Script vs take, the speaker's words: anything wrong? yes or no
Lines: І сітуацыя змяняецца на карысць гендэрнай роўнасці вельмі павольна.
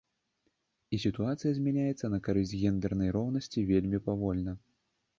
no